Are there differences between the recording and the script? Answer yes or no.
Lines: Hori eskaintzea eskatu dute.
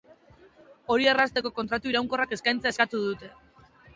yes